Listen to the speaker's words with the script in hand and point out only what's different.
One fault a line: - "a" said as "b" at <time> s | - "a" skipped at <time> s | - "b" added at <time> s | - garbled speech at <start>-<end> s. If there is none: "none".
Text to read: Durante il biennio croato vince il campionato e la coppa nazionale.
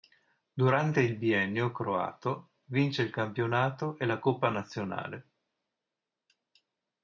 none